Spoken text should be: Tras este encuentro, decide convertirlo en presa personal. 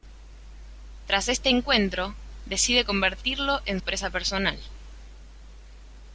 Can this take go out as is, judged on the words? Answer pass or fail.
pass